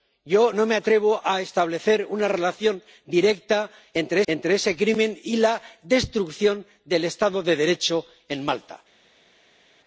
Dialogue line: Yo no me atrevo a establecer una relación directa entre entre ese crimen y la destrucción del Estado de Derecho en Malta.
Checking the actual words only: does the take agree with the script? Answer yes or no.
yes